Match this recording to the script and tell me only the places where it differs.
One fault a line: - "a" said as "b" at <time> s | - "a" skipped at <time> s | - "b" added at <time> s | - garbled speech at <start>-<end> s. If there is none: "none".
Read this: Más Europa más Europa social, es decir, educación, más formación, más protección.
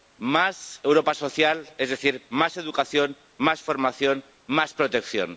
- "más Europa" skipped at 1.1 s
- "más" added at 2.3 s